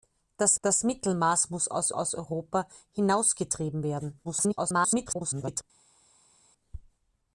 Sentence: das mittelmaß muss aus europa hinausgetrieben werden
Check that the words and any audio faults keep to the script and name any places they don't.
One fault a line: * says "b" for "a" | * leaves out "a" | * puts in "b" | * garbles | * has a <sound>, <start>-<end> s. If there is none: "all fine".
* puts in "das"
* puts in "aus"
* garbles